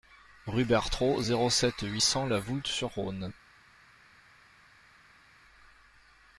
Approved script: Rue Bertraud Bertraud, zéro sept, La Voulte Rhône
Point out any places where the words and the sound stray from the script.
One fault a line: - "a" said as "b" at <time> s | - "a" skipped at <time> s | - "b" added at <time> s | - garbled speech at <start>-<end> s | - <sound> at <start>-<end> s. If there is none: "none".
- "Bertraud" skipped at 1.2 s
- "huit cents" added at 1.8 s
- "sur" added at 2.7 s